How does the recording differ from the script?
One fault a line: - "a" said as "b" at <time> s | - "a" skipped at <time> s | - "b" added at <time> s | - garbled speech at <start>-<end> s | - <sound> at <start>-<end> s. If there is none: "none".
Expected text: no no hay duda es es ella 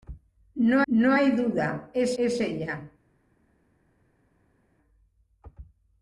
none